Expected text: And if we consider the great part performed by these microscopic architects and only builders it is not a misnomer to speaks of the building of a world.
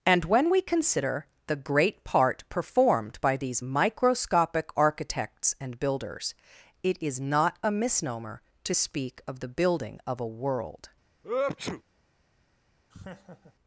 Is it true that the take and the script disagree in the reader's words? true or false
true